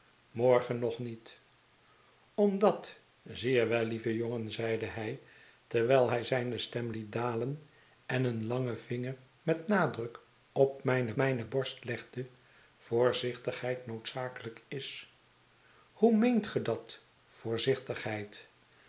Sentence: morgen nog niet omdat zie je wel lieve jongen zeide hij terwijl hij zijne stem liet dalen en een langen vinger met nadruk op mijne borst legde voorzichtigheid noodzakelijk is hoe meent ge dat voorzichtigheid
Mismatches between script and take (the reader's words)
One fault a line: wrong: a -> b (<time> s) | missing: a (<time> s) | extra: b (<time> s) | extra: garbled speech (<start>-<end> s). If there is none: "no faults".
extra: mijne (11.2 s)